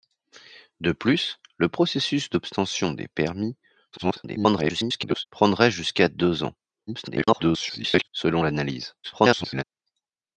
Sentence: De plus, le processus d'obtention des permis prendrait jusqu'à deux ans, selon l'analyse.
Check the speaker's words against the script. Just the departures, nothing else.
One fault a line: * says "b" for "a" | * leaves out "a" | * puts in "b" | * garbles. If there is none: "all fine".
* garbles
* garbles
* garbles